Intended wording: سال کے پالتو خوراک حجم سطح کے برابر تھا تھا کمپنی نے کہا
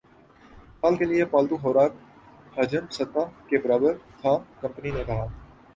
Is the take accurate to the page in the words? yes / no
no